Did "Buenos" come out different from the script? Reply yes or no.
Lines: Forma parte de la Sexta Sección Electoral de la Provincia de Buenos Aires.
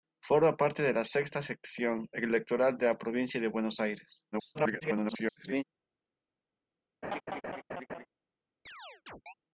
no